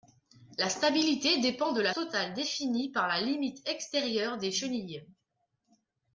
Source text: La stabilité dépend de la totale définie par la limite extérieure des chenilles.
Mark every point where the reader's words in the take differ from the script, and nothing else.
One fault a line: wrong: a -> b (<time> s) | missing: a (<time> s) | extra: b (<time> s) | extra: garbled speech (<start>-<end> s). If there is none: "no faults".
no faults